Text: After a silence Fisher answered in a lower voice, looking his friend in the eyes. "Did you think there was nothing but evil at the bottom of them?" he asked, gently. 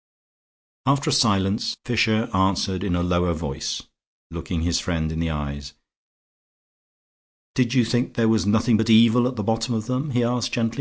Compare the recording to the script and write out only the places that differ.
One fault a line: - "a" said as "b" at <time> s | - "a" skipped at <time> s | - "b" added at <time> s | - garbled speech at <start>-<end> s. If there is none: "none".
none